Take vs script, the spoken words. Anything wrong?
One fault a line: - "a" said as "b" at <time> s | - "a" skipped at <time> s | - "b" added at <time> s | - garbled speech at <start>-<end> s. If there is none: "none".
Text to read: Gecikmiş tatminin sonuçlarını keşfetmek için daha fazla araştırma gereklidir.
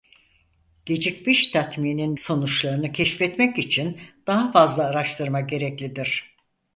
none